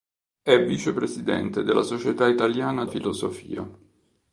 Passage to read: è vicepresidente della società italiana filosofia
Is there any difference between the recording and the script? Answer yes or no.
no